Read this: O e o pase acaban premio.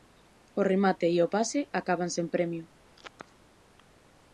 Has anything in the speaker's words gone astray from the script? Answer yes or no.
yes